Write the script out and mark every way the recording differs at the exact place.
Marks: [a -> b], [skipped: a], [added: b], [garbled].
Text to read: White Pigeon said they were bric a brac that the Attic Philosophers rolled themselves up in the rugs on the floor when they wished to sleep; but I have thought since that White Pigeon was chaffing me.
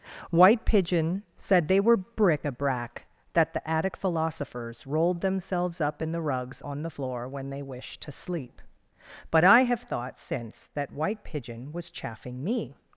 White Pigeon said they were bric a brac that the Attic Philosophers rolled themselves up in the rugs on the floor when they wished to sleep; but I have thought since that White Pigeon was chaffing me.